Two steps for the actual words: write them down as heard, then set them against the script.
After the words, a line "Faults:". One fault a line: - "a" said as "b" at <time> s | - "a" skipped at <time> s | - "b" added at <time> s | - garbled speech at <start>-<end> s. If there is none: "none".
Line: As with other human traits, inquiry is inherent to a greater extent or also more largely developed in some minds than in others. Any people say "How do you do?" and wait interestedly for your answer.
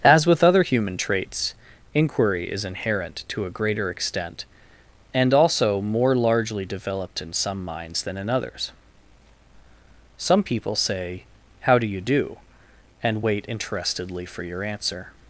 As with other human traits, inquiry is inherent to a greater extent and also more largely developed in some minds than in others. Some people say "How do you do?" and wait interestedly for your answer.
Faults:
- "or" said as "and" at 5.1 s
- "Any" said as "Some" at 10.2 s